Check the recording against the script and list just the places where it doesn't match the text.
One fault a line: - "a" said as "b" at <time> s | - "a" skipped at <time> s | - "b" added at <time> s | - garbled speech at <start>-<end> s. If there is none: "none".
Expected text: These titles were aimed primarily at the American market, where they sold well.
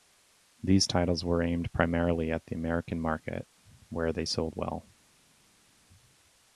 none